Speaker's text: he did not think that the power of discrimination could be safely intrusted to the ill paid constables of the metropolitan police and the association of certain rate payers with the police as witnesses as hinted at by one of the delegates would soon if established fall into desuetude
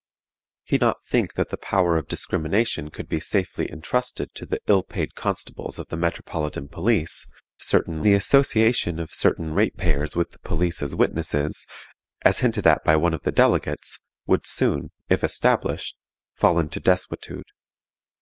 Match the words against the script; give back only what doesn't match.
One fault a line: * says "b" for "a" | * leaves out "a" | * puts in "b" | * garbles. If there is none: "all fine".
* leaves out "did"
* says "certain" for "and"